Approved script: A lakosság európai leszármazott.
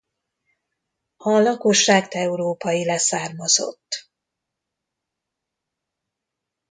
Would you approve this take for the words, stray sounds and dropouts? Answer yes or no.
yes